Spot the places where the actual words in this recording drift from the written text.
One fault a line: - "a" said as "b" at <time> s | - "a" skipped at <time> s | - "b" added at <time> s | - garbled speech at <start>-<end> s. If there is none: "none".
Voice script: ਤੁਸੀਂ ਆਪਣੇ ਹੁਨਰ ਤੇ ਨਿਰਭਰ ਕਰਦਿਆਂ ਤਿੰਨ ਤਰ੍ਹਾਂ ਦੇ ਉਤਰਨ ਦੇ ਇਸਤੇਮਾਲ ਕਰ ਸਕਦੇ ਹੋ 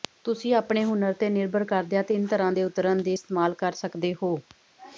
none